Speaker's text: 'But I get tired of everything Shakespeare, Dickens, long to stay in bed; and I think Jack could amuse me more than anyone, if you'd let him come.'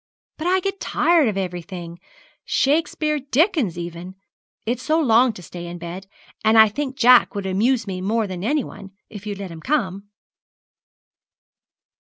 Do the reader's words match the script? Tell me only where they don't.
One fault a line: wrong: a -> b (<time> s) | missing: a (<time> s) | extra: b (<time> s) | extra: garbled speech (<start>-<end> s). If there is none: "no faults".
extra: even It's so (3.8 s)
wrong: could -> would (7.3 s)